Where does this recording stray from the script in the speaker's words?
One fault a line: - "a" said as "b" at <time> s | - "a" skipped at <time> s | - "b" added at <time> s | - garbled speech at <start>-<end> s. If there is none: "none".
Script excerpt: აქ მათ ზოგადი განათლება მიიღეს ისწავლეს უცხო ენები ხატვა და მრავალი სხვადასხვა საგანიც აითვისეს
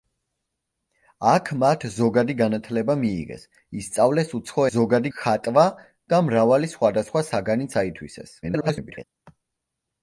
- "ენები" said as "ზოგადი" at 4.7 s
- garbled speech at 8.4-9.0 s